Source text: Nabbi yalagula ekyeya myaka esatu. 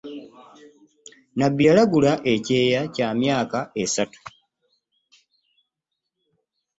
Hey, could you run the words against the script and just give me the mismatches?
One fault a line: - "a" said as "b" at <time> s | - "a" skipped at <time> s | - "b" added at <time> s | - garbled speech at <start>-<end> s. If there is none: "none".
- "kya" added at 2.9 s